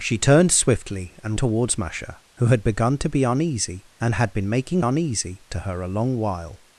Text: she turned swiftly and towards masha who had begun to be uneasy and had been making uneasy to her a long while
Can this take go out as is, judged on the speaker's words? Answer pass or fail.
pass